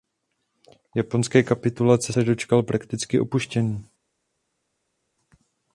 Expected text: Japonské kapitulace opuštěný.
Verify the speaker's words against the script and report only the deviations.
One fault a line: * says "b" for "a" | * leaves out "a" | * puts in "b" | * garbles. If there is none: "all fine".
* puts in "se dočkal prakticky"